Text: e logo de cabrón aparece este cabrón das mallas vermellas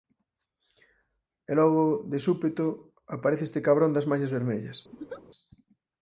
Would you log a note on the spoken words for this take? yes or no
yes